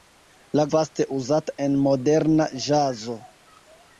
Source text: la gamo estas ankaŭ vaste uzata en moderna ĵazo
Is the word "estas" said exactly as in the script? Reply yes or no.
no